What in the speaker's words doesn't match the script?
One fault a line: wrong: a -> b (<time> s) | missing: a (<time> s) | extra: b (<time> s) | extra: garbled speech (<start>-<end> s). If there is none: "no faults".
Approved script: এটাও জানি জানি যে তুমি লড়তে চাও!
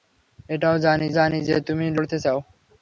no faults